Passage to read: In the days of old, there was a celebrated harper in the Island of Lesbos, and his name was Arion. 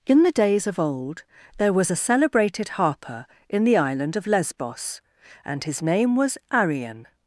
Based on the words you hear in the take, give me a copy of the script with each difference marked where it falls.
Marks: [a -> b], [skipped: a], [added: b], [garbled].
In the days of old, there was a celebrated harper in the Island of Lesbos, and his name was Arion.